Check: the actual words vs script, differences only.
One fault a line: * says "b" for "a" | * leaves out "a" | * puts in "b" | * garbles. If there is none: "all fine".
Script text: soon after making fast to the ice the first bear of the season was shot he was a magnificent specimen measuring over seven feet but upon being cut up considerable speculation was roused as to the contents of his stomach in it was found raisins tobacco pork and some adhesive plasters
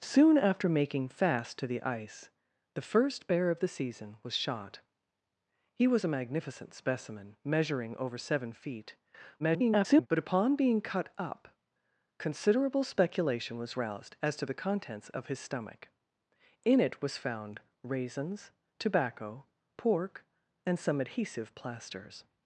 * garbles